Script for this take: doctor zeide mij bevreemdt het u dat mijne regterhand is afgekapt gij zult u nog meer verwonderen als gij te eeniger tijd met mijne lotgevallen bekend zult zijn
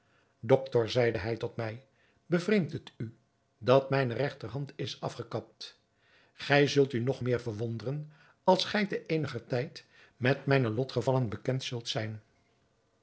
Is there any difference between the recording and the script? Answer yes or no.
yes